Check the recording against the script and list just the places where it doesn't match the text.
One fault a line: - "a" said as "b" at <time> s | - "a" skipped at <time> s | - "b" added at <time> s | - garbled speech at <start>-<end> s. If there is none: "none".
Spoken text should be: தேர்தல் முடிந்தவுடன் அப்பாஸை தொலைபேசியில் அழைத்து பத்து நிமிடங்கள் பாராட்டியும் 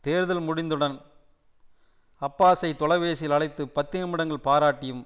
none